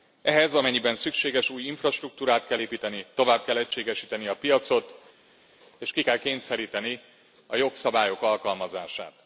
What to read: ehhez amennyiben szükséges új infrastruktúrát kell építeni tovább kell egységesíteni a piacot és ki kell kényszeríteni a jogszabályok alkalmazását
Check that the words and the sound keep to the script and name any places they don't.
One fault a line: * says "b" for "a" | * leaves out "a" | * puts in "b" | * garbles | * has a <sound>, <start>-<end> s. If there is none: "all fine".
all fine